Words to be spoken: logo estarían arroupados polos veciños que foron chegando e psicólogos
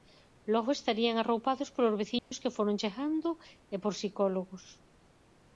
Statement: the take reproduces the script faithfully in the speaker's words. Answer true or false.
false